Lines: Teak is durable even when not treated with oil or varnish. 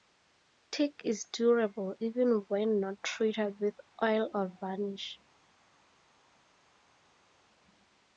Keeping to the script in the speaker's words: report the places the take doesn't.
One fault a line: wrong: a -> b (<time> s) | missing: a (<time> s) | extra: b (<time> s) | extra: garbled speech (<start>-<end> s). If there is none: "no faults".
no faults